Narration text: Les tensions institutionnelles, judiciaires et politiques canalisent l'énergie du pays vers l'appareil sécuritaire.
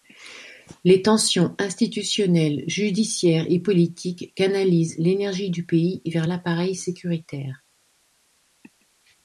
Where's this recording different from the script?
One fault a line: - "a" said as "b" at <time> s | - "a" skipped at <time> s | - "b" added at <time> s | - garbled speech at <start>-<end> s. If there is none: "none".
none